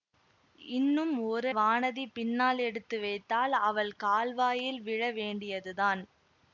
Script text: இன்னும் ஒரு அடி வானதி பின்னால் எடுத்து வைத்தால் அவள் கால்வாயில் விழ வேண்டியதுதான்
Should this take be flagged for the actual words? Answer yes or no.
yes